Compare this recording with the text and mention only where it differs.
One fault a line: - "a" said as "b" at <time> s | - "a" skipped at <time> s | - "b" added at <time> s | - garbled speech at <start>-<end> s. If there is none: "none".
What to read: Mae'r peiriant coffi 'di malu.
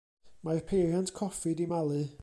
none